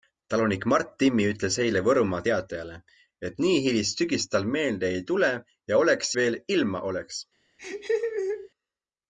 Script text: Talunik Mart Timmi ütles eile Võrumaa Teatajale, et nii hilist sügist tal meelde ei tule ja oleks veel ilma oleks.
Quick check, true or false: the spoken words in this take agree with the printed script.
true